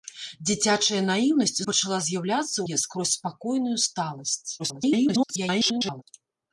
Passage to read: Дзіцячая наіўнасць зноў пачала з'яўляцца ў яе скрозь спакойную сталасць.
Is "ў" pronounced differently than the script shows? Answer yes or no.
yes